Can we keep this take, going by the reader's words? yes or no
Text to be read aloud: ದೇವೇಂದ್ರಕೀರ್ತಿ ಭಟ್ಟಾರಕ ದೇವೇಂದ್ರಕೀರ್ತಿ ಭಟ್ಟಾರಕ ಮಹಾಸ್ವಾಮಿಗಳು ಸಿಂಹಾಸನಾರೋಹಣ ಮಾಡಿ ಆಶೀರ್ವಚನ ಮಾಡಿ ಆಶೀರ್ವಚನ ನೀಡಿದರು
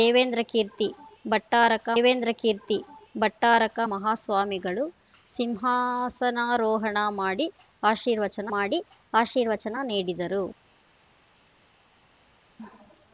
yes